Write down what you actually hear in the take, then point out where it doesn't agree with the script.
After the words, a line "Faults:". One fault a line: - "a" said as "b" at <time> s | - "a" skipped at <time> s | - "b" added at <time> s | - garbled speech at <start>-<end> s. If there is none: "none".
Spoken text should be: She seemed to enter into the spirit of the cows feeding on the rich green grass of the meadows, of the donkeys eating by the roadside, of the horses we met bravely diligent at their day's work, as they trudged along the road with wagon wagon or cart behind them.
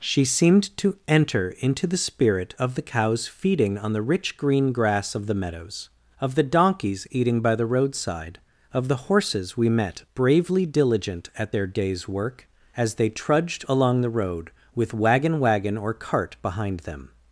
She seemed to enter into the spirit of the cows feeding on the rich green grass of the meadows, of the donkeys eating by the roadside, of the horses we met bravely diligent at their day's work, as they trudged along the road with wagon wagon or cart behind them.
Faults:
none